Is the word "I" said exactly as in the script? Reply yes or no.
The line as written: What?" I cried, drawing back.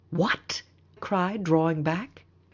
no